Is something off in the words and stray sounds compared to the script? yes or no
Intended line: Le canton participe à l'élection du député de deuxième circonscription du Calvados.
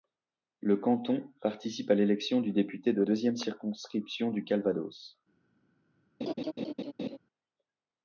yes